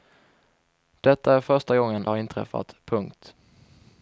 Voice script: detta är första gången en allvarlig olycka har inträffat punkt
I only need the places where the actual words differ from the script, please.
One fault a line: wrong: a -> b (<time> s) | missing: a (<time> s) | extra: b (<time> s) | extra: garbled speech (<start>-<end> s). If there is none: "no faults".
missing: en allvarlig olycka (2.1 s)